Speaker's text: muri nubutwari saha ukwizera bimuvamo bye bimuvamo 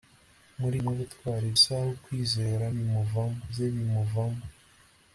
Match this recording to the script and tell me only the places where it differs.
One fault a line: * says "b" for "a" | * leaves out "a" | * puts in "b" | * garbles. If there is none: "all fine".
all fine